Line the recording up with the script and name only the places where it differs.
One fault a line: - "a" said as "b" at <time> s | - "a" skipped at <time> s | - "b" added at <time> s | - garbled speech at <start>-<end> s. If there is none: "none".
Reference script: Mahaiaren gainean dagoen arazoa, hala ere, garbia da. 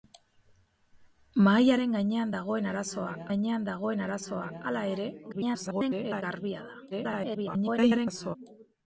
- "gainean dagoen arazoa" added at 3.3 s
- garbled speech at 5.3-6.2 s
- garbled speech at 6.9-8.4 s